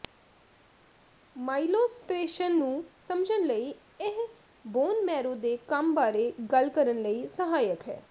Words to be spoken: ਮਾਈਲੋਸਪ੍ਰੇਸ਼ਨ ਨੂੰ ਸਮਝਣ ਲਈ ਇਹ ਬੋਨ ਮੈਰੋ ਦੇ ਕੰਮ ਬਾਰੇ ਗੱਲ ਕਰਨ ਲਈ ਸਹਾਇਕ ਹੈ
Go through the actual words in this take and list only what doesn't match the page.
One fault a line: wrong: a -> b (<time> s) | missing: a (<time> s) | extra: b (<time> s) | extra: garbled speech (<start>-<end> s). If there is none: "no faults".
no faults